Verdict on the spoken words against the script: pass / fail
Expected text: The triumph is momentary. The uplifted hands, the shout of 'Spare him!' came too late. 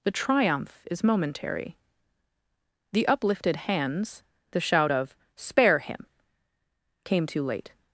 pass